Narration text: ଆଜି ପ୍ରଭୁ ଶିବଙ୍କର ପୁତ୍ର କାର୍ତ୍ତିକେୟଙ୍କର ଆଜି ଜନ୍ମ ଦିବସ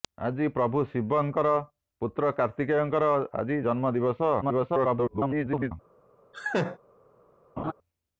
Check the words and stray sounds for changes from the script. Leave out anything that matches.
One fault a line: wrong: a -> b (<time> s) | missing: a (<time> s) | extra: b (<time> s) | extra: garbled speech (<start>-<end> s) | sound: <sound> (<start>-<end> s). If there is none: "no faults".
extra: garbled speech (4.4-5.7 s)
sound: laugh (6.3-6.8 s)
sound: laugh (7.6-7.7 s)